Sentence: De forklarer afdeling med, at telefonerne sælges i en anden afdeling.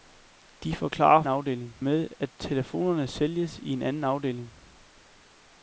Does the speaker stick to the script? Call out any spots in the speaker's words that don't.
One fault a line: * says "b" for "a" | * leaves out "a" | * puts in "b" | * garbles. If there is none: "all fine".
all fine